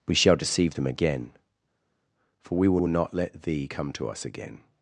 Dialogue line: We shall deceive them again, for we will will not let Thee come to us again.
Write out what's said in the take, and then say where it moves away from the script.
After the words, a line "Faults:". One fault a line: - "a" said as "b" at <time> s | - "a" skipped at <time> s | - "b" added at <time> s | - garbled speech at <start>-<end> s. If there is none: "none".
We shall deceive them again, for we will will not let Thee come to us again.
Faults:
none